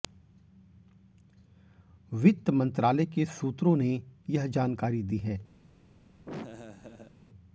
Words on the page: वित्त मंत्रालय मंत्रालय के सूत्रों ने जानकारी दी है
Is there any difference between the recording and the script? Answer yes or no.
yes